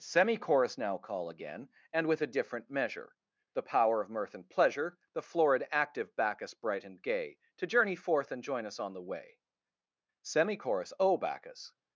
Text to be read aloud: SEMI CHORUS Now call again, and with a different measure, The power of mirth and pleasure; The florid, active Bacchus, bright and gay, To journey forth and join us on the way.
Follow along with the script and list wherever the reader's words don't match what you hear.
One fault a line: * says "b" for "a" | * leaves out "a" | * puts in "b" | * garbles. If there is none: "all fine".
* puts in "SEMI CHORUS O Bacchus"